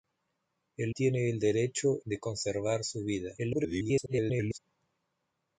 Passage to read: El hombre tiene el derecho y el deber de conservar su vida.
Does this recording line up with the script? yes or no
no